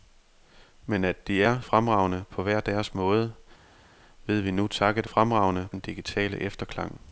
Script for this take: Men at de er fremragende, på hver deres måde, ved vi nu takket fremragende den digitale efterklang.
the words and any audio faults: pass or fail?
pass